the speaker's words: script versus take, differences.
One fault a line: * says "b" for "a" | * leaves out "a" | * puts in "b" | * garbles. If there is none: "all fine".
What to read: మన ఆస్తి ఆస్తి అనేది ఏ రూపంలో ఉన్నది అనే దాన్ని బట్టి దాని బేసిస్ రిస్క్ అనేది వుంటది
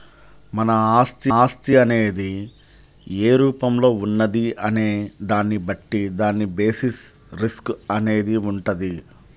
all fine